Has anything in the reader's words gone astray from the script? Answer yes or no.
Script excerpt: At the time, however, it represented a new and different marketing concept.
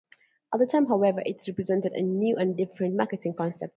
no